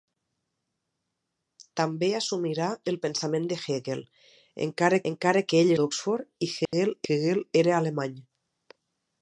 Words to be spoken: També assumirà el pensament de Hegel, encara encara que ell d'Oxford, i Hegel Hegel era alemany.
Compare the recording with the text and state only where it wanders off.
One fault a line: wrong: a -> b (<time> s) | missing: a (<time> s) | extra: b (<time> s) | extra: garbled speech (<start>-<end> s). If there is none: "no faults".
no faults